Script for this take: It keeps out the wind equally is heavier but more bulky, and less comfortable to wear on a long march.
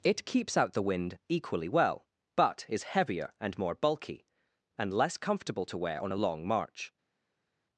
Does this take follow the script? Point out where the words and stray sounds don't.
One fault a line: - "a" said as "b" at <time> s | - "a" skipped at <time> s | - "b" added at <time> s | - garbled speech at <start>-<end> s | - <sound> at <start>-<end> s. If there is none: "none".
- "well but" added at 1.7 s
- "but" said as "and" at 3.4 s